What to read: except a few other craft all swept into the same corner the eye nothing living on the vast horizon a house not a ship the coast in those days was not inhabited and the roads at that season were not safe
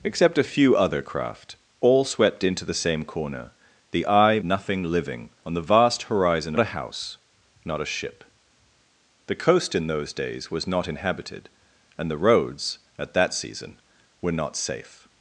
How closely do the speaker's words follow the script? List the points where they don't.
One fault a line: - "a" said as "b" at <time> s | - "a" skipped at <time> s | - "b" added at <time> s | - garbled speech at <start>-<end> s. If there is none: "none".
none